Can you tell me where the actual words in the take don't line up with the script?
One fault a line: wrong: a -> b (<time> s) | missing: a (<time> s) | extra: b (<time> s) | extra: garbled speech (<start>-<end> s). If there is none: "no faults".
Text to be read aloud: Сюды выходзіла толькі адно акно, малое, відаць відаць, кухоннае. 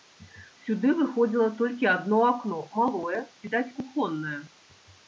missing: відаць (3.7 s)